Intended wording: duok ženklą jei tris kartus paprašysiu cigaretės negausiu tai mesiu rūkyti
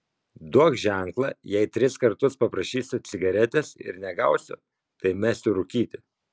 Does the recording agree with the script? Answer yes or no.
no